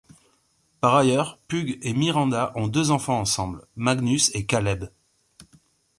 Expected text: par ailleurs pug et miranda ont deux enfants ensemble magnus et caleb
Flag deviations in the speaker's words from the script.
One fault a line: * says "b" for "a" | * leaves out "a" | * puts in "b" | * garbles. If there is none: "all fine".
all fine